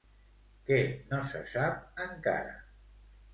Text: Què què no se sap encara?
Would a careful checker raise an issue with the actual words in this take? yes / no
yes